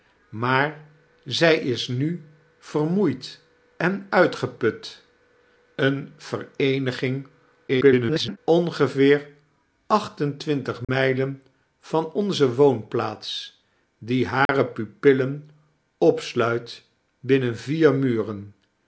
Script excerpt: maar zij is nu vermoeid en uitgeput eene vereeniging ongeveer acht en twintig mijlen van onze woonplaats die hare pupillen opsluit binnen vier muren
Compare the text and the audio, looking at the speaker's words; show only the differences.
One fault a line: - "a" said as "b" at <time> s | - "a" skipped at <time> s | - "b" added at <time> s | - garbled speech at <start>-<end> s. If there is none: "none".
- garbled speech at 7.7-8.4 s